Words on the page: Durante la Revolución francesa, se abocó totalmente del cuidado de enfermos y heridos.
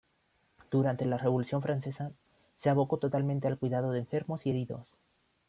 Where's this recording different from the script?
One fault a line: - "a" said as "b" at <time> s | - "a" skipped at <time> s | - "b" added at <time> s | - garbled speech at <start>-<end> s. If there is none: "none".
- "del" said as "al" at 3.5 s